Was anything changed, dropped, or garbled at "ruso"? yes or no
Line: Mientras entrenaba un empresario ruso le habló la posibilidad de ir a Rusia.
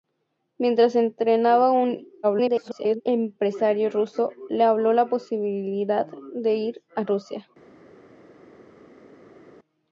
no